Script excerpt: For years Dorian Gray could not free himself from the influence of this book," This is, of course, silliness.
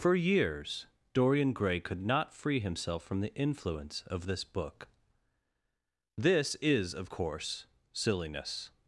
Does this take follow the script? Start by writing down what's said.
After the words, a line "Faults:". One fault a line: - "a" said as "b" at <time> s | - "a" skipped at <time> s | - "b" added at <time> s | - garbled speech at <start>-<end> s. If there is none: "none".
For years Dorian Gray could not free himself from the influence of this book," This is, of course, silliness.
Faults:
none